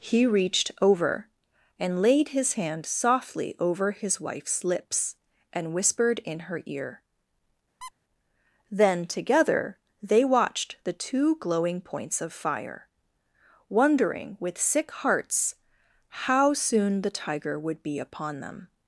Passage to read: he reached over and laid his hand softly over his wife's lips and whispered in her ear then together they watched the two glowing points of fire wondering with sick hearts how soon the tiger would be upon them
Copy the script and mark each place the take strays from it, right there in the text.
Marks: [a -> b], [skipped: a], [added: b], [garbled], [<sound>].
he reached over and laid his hand softly over his wife's lips and whispered in her ear [squeak] then together they watched the two glowing points of fire wondering with sick hearts how soon the tiger would be upon them